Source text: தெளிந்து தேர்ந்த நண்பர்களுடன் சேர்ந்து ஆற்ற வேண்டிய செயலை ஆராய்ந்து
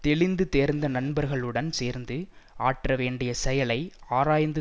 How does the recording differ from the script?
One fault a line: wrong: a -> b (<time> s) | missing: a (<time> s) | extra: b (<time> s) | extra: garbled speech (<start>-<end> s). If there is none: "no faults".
no faults